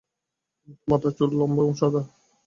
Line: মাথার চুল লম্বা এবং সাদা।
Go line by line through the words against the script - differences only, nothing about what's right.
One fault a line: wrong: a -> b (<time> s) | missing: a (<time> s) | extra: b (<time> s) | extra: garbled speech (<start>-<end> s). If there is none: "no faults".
no faults